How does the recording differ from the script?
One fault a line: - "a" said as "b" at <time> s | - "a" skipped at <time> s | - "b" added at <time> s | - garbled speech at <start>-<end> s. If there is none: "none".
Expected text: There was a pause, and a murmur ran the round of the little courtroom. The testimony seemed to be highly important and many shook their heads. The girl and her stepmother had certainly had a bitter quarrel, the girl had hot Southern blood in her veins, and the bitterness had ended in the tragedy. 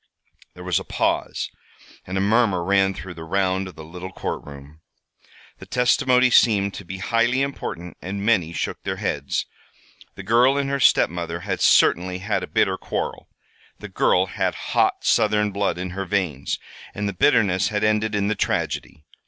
none